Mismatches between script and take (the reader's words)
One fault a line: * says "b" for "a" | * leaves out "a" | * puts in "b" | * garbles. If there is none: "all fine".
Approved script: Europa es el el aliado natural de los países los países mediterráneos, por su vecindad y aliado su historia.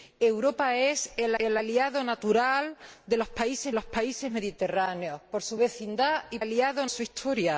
all fine